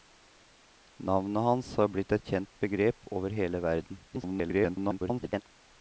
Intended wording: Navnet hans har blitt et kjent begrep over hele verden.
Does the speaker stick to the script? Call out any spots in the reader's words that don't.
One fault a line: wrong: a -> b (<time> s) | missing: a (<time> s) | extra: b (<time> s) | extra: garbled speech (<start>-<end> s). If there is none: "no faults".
extra: garbled speech (4.1-5.4 s)